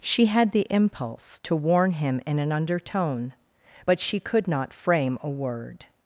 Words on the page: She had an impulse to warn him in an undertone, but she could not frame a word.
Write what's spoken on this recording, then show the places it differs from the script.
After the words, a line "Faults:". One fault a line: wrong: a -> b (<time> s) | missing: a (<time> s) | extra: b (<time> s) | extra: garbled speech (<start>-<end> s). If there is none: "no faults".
She had the impulse to warn him in an undertone, but she could not frame a word.
Faults:
wrong: an -> the (0.5 s)